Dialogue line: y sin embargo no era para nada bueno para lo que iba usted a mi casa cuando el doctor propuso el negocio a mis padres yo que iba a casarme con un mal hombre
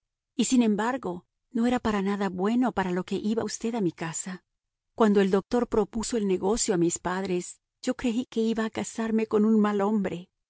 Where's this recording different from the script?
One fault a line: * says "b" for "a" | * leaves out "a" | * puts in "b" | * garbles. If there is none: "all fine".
* puts in "creí"